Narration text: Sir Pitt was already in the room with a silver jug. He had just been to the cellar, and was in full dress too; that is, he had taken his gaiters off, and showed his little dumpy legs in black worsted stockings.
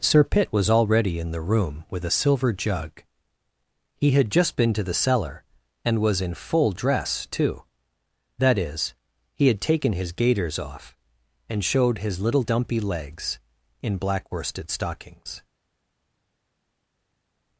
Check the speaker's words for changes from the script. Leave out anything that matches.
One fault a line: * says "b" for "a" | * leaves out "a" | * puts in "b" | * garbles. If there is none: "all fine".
all fine